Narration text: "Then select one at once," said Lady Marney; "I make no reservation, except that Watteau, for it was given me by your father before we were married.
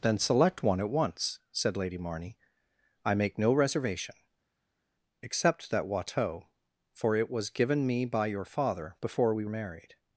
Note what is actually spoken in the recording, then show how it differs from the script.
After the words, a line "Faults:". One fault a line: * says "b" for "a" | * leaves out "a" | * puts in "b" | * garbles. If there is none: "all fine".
"Then select one at once," said Lady Marney; "I make no reservation, except that Watteau, for it was given me by your father before we married.
Faults:
* leaves out "were"